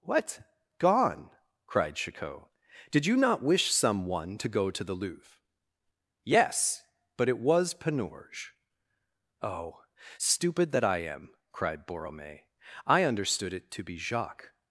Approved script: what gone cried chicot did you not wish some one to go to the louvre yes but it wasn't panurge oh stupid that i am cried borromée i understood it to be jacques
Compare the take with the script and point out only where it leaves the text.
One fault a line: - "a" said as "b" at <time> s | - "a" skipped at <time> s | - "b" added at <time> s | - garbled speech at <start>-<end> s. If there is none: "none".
- "wasn't" said as "was" at 7.4 s